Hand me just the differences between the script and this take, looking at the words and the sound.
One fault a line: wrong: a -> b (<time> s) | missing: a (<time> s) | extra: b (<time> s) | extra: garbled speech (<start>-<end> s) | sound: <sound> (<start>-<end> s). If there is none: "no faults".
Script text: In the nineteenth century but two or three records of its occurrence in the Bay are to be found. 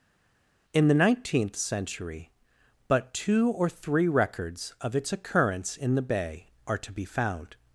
no faults